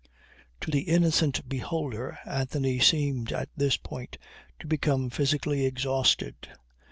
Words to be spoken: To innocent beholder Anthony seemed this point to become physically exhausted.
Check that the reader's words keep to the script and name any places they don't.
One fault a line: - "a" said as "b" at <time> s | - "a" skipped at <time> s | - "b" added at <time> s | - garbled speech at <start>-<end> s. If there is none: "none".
- "the" added at 0.7 s
- "at" added at 3.3 s